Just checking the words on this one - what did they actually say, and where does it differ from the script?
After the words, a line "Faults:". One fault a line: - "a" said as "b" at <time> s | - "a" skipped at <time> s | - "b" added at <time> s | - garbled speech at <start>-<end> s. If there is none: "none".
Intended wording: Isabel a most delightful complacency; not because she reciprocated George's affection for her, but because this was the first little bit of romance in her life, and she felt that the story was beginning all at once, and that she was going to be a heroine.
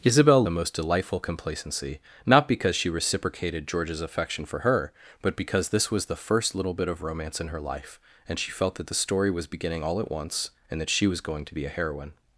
Isabel a most delightful complacency; not because she reciprocated George's affection for her, but because this was the first little bit of romance in her life, and she felt that the story was beginning all at once, and that she was going to be a heroine.
Faults:
none